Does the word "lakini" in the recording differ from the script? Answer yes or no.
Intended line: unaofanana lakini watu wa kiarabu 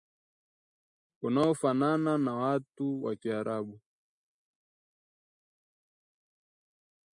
yes